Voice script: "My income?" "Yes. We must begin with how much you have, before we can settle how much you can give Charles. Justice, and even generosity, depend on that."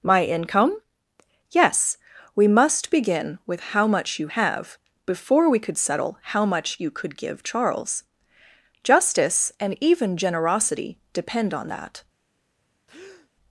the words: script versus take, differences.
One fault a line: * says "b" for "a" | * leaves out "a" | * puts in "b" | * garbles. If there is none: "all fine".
* says "could" for "can"
* says "could" for "can"